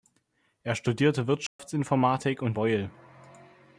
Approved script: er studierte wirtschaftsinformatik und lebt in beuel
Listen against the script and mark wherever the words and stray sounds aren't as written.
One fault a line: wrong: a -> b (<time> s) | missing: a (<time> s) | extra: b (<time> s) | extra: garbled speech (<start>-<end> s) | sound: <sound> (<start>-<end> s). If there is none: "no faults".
sound: dropout (1.5-1.6 s)
missing: lebt in (2.6 s)